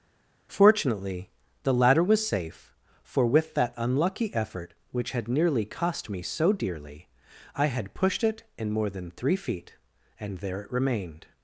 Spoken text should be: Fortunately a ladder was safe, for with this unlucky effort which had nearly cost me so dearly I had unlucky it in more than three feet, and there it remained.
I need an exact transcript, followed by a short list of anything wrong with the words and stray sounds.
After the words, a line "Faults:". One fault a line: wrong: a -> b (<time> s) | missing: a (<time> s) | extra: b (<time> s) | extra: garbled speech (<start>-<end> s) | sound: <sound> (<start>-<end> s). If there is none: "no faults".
Fortunately the ladder was safe, for with that unlucky effort which had nearly cost me so dearly I had pushed it in more than three feet, and there it remained.
Faults:
wrong: a -> the (1.6 s)
wrong: this -> that (3.5 s)
wrong: unlucky -> pushed (7.9 s)